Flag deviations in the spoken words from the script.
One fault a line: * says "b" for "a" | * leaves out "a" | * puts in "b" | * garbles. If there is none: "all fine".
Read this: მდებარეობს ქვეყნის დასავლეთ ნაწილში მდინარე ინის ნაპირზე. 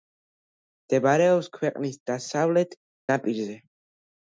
* leaves out "ნაწილში მდინარე ინის"